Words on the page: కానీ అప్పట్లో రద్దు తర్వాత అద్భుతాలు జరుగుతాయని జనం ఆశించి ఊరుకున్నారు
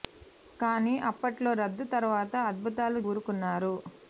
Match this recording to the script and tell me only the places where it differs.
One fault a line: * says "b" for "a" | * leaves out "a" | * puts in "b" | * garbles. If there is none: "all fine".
* leaves out "జరుగుతాయని జనం ఆశించి"